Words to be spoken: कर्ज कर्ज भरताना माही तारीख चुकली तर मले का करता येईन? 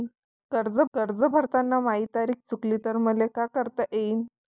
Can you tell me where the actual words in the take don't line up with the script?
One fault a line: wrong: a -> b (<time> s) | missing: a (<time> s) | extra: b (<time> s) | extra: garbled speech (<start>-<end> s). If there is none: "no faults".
no faults